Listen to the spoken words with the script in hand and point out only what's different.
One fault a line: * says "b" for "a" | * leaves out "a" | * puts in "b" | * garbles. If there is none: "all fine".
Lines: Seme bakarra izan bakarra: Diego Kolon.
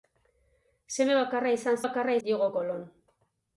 all fine